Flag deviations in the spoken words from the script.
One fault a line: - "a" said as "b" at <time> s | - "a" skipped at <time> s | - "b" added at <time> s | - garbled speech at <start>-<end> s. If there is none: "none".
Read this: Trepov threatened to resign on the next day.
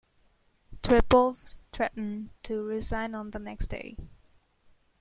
none